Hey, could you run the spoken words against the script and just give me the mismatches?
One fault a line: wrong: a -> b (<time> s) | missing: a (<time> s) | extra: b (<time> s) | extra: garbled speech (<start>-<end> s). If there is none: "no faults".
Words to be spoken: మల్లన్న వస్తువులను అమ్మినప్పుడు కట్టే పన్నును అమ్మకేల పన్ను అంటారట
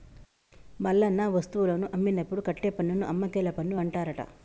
no faults